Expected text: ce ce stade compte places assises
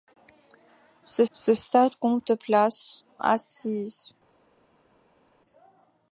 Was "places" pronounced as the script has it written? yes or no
yes